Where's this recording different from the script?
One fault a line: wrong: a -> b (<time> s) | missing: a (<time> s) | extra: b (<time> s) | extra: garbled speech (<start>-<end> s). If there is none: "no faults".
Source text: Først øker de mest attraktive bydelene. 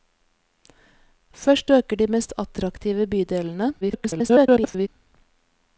extra: garbled speech (3.8-4.9 s)